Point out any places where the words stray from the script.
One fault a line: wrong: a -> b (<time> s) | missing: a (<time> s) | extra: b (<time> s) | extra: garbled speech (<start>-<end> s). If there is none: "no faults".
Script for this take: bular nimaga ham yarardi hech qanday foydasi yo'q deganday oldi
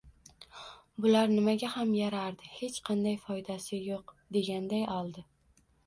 no faults